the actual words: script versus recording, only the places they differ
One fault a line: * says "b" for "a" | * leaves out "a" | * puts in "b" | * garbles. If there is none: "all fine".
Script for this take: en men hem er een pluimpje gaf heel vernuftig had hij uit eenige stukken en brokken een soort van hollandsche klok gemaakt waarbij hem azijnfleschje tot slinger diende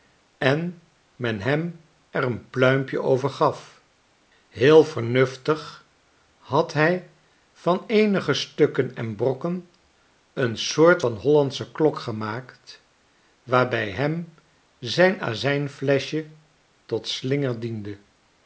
* puts in "over"
* says "van" for "uit"
* puts in "zijn"